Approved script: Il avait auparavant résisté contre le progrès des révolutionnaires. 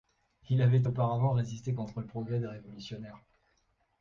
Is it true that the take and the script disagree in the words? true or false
false